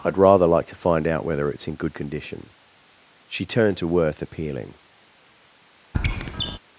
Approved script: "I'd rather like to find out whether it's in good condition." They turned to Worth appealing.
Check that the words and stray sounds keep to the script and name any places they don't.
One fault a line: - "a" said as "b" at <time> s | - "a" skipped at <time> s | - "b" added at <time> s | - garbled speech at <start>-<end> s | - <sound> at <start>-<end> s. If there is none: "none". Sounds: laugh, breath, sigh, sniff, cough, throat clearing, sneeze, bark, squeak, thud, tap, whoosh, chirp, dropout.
- "They" said as "She" at 3.3 s
- squeak at 5.9-6.6 s